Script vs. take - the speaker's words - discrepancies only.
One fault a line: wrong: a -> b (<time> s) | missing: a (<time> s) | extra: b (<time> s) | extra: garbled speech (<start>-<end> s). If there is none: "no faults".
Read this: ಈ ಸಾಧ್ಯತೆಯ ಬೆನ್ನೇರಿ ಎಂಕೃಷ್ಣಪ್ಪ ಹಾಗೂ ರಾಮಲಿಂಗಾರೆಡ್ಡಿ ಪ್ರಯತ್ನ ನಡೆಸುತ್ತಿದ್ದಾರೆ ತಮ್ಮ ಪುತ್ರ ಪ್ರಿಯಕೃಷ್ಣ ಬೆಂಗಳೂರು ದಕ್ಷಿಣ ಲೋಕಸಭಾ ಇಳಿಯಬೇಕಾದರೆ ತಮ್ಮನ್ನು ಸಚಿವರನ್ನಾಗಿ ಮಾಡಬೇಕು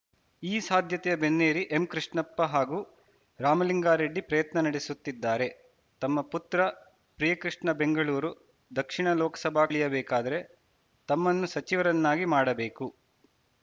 no faults